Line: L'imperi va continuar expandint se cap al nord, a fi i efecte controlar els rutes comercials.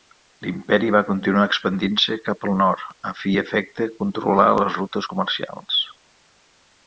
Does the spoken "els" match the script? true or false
false